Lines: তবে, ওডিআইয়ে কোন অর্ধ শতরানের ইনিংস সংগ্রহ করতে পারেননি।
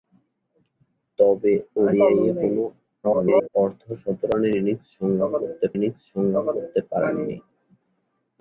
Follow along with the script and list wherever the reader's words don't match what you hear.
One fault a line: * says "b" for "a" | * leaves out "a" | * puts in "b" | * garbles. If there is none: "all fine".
* garbles
* puts in "ইনিংস সংগ্রহ করতে"